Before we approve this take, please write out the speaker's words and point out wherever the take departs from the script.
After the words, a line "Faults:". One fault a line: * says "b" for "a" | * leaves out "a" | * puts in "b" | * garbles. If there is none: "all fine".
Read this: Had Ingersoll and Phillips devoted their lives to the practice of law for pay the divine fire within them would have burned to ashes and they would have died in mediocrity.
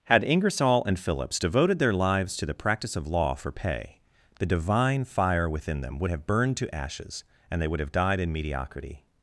Had Ingersoll and Phillips devoted their lives to the practice of law for pay the divine fire within them would have burned to ashes and they would have died in mediocrity.
Faults:
all fine